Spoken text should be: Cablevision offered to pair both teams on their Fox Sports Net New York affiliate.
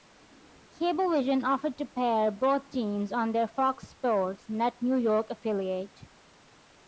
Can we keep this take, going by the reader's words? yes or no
yes